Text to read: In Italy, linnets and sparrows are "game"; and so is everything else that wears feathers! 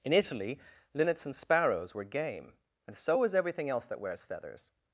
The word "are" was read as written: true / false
false